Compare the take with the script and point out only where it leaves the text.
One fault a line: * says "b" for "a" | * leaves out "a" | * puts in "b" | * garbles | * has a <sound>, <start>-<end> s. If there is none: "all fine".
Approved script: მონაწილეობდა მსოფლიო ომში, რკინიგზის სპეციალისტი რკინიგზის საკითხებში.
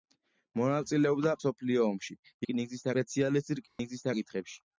* has a dropout, 3.7-3.8 s